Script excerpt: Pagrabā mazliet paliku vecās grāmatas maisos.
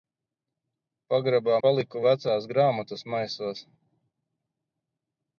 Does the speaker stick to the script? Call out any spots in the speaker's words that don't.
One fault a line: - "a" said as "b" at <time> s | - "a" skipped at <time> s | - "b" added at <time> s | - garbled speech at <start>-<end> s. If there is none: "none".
- "mazliet" skipped at 1.6 s